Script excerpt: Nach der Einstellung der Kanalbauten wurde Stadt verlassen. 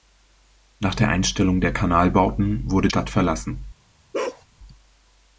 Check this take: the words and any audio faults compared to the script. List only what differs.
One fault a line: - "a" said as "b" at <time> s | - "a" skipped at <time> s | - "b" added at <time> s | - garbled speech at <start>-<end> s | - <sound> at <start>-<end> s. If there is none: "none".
- bark at 4.1-4.4 s